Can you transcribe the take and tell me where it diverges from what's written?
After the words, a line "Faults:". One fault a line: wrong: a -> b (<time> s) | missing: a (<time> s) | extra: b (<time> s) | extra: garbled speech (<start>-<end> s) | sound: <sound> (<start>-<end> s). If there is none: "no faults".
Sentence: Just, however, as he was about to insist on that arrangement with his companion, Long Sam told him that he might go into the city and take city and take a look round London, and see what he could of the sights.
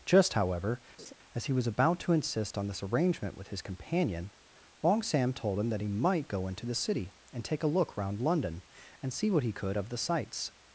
Just, however, as he was about to insist on this arrangement with his companion, Long Sam told him that he might go into the city and take a look round London, and see what he could of the sights.
Faults:
sound: laugh (1.0-1.1 s)
wrong: that -> this (2.7 s)
missing: city and take (7.6 s)